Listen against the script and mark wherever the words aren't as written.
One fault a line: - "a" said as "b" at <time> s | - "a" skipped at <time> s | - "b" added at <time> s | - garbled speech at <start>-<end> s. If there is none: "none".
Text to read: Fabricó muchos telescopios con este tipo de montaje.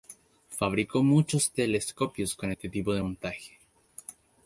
none